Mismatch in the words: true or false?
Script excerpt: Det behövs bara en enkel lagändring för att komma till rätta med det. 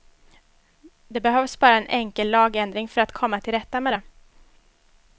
false